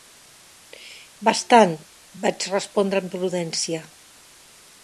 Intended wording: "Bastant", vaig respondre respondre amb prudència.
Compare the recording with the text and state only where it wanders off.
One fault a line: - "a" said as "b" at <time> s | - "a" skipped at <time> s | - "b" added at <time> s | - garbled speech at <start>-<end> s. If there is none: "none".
- "respondre" skipped at 3.0 s